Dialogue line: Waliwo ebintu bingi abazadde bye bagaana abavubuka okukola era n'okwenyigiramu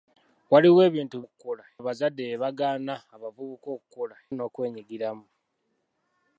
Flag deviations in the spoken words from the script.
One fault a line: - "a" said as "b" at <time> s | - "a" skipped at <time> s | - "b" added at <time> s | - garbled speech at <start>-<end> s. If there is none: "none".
- "bingi" said as "okukola" at 1.2 s
- "era" skipped at 4.2 s